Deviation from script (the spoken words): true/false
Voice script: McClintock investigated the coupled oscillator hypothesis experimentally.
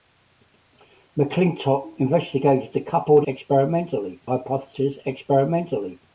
true